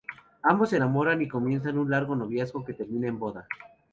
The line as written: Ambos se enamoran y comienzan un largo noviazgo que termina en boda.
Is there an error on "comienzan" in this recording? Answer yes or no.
no